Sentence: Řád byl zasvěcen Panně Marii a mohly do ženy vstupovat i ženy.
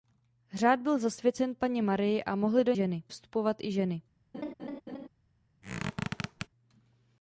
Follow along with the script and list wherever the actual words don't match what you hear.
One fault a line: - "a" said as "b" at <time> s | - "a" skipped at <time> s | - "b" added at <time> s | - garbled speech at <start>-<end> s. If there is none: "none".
none